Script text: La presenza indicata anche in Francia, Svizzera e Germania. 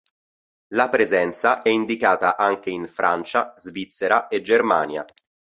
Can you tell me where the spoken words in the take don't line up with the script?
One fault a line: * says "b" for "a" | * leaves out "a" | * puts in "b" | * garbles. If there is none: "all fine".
all fine